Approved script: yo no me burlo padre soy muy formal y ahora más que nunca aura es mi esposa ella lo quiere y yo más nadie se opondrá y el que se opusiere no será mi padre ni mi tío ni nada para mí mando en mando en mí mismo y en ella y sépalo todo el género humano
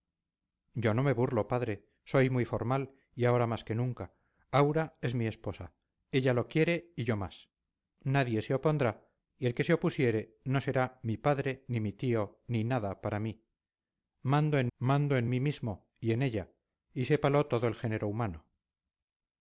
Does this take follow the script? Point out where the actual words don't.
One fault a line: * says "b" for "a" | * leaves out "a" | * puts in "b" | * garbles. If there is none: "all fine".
all fine